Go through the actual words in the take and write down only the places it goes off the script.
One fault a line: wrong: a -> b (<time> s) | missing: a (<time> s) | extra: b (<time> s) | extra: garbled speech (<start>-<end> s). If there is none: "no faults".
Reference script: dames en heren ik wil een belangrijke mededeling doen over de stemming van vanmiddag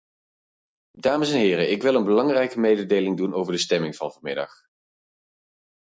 no faults